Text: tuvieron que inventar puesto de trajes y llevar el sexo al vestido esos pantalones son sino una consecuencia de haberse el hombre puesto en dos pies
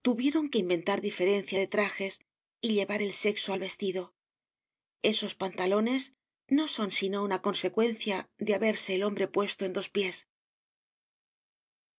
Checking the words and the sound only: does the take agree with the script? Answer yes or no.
no